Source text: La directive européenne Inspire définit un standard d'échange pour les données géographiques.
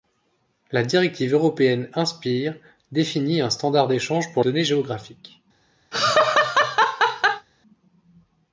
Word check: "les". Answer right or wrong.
wrong